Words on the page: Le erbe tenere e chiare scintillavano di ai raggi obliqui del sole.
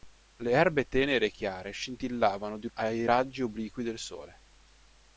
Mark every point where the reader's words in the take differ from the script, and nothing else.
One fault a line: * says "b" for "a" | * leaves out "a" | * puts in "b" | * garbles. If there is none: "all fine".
all fine